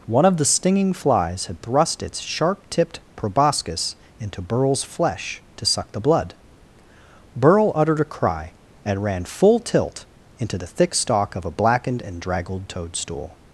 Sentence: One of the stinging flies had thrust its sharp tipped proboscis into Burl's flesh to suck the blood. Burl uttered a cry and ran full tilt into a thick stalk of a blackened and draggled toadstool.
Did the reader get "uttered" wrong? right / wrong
right